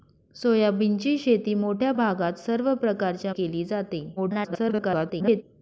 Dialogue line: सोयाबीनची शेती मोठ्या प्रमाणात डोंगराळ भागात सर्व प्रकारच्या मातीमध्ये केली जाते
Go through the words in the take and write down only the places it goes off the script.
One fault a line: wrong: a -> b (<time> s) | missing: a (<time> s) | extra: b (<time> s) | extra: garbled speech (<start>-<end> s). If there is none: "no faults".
missing: प्रमाणात डोंगराळ (1.9 s)
missing: मातीमध्ये (3.3 s)
extra: garbled speech (4.2-5.4 s)